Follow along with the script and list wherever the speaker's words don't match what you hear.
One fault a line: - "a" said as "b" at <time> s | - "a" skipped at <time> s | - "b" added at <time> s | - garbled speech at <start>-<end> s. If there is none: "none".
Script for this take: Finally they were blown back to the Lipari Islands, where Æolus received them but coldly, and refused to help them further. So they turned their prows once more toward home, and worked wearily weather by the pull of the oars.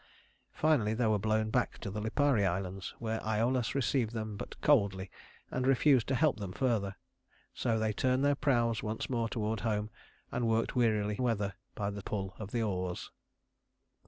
none